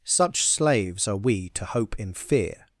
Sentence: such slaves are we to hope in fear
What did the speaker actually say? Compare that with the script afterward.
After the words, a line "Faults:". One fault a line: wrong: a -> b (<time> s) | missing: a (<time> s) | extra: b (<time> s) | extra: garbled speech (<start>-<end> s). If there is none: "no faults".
such slaves are we to hope in fear
Faults:
no faults